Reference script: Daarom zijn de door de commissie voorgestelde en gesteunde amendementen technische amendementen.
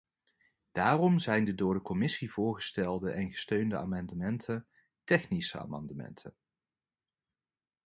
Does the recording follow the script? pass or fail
pass